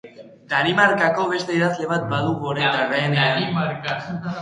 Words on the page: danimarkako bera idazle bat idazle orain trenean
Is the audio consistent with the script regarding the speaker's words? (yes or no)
no